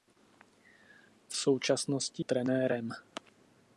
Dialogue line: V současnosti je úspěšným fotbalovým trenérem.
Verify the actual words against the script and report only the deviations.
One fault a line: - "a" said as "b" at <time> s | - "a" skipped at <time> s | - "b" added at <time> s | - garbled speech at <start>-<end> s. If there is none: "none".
- "je úspěšným fotbalovým" skipped at 2.2 s